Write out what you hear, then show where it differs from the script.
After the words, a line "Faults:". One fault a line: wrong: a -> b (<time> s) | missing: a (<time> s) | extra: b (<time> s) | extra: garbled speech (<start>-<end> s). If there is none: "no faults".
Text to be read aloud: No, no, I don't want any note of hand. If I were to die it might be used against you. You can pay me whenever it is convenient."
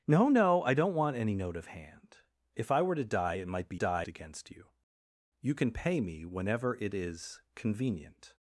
No, no, I don't want any note of hand. If I were to die it might be die against you. You can pay me whenever it is convenient."
Faults:
wrong: used -> die (3.7 s)